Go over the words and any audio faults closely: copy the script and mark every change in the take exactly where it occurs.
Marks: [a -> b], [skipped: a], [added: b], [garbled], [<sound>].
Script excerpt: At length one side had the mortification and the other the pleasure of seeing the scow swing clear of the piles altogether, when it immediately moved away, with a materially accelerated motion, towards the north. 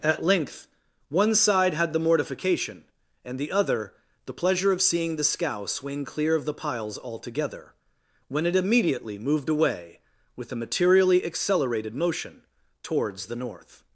At length one side had the mortification and the other the pleasure of seeing the scow swing clear of the piles altogether, when it immediately moved away, with a materially accelerated motion, towards the north.